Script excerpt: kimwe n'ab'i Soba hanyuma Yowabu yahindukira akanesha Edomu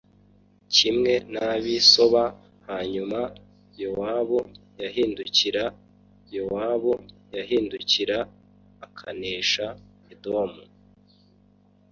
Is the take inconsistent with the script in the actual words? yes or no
yes